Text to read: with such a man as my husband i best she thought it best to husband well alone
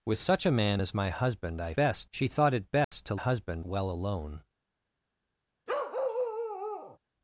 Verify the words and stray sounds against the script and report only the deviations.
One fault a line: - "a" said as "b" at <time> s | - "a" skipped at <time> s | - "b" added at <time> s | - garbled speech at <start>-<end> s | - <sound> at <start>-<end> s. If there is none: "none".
- dropout at 2.8-2.9 s
- bark at 5.7-7.0 s